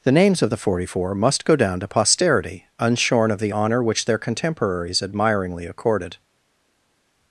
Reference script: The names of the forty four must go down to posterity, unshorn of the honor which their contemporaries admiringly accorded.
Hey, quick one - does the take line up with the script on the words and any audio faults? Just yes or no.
yes